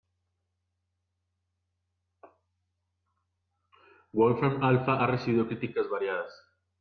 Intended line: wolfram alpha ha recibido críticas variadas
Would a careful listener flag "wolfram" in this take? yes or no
no